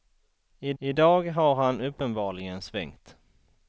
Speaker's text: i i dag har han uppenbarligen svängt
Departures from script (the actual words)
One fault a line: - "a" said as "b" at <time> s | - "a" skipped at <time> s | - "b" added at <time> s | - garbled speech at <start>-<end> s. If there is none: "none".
none